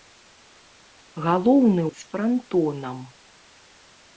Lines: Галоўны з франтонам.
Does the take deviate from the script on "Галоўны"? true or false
false